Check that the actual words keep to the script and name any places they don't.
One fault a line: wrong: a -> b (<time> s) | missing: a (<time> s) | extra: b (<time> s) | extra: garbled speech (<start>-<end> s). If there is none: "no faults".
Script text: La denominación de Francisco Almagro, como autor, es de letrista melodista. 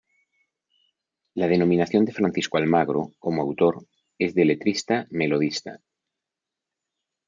no faults